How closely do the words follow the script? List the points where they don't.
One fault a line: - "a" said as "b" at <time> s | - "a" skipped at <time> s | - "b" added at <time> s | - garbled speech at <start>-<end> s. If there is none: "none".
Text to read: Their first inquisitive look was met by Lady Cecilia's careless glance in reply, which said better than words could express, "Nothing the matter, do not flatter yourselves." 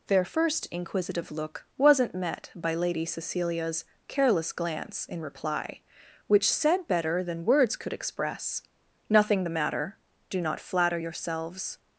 - "was" said as "wasn't" at 1.8 s